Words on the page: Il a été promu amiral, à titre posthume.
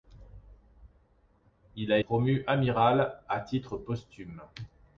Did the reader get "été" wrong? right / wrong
wrong